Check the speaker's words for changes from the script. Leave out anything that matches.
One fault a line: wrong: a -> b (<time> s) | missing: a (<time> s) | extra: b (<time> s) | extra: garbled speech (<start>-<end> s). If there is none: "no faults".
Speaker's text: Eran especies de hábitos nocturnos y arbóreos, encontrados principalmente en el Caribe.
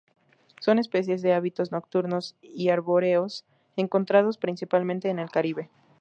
wrong: Eran -> Son (0.6 s)